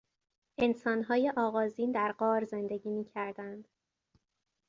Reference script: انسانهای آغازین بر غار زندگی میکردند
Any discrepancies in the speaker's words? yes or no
yes